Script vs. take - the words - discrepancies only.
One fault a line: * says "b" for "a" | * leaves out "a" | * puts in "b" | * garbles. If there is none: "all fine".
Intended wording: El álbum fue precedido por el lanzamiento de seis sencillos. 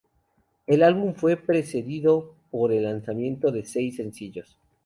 all fine